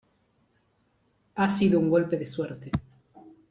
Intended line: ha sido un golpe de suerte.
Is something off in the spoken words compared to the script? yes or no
no